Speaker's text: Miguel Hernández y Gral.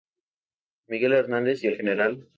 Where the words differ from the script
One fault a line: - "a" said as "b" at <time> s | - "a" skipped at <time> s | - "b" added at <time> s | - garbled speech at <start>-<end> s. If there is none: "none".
- "el" added at 1.7 s